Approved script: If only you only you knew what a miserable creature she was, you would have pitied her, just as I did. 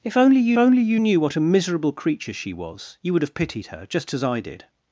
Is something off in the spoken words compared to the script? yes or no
no